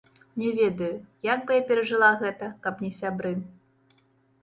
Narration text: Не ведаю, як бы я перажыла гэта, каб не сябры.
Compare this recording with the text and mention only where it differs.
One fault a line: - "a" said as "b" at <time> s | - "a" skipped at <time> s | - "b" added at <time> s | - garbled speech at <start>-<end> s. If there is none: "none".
none